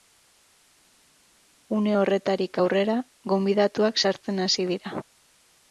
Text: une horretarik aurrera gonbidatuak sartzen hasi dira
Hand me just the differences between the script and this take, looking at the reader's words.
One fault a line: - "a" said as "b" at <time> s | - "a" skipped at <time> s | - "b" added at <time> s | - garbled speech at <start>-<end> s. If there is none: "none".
none